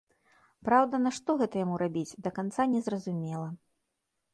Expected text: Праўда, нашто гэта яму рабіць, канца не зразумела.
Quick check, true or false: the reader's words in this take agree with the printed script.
false